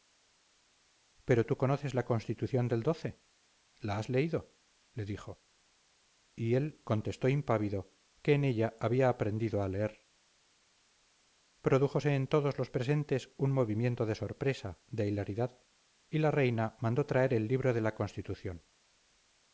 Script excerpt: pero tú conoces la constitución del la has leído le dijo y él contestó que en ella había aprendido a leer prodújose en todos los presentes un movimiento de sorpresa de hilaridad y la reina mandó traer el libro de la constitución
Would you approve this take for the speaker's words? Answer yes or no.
no